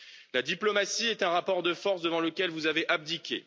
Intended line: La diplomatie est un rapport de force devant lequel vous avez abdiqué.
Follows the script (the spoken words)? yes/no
yes